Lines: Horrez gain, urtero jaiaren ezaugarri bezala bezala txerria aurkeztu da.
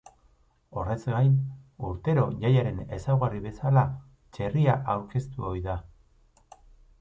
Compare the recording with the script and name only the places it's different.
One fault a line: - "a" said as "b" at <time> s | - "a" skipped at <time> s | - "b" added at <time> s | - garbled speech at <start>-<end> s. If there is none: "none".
- "bezala" skipped at 3.9 s
- "ohi" added at 5.5 s